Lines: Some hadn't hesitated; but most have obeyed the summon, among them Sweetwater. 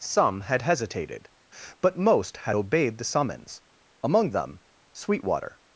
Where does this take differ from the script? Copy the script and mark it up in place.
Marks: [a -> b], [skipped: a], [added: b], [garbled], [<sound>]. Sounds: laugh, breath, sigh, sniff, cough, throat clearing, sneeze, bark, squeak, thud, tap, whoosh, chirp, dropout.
Some [hadn't -> had] hesitated; but most [have -> had] obeyed the [summon, -> summons] among them Sweetwater.